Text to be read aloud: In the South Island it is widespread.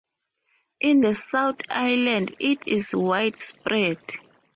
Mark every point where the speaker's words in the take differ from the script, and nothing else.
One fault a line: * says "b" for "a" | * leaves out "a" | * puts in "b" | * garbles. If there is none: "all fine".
all fine